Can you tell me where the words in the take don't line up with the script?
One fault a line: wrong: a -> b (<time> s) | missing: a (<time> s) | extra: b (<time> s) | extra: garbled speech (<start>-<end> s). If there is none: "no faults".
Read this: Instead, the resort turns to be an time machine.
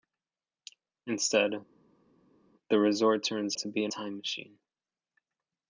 no faults